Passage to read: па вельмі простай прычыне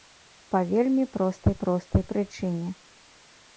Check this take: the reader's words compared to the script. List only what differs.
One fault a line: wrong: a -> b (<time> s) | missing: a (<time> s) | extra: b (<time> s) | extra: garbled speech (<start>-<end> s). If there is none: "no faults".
extra: простай (1.6 s)